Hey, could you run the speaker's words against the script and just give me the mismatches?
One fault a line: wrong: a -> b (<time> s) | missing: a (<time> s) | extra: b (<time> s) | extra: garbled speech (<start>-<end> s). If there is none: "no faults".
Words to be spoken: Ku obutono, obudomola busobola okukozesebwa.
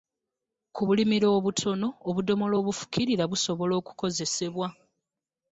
extra: bulimiro (0.9 s)
extra: obufukirira (2.6 s)